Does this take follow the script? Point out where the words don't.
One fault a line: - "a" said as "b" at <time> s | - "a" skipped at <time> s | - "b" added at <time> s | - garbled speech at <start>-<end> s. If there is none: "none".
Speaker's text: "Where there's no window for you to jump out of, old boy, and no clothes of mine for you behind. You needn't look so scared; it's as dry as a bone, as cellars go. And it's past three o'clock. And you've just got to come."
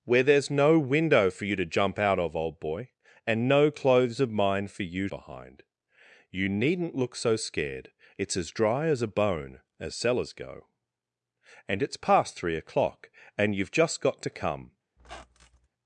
none